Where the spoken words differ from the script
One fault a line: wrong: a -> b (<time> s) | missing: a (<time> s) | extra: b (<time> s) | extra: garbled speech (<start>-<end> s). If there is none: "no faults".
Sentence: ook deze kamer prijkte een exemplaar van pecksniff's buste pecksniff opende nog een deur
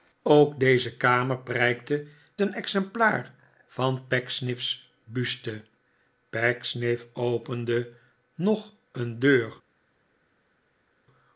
no faults